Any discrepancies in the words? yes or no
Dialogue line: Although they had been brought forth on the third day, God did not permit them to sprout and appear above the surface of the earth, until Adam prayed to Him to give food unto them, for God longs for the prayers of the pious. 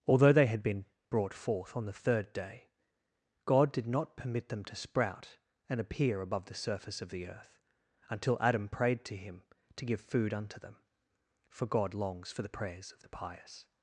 no